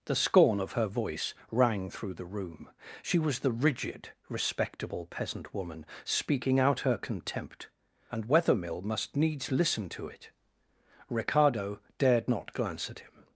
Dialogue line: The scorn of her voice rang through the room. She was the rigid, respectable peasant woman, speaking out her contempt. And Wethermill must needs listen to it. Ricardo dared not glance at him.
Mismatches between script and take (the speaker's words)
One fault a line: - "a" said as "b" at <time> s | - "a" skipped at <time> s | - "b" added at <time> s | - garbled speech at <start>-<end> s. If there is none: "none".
none